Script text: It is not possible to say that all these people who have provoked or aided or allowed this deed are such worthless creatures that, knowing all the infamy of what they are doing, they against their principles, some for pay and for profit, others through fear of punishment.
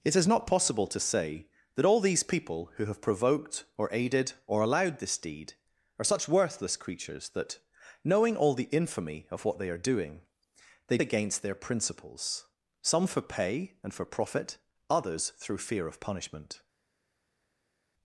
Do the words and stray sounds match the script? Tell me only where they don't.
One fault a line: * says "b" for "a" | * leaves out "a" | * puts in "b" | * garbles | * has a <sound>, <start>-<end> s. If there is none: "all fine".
all fine